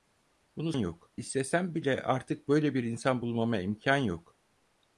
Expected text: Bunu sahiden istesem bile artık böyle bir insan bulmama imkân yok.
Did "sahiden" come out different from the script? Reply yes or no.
yes